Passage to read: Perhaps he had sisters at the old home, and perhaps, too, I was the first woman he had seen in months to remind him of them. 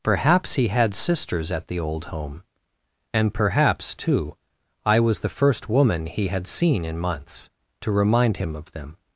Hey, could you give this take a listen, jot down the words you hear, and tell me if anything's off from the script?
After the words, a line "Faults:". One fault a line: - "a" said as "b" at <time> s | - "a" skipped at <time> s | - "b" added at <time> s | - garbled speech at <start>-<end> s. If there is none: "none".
Perhaps he had sisters at the old home, and perhaps, too, I was the first woman he had seen in months to remind him of them.
Faults:
none